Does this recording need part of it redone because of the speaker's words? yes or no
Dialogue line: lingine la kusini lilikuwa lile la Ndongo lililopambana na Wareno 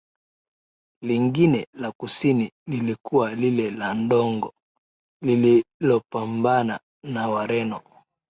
no